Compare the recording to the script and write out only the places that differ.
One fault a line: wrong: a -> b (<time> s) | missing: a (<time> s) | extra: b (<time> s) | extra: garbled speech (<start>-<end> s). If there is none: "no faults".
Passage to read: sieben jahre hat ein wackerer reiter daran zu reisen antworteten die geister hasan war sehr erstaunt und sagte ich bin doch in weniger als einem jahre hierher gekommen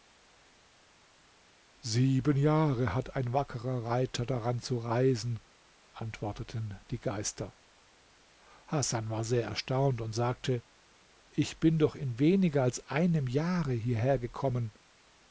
no faults